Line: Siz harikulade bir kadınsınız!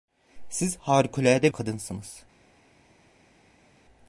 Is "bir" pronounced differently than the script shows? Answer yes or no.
yes